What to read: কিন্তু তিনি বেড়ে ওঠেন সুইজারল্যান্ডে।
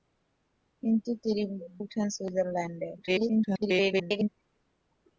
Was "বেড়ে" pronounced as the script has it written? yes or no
no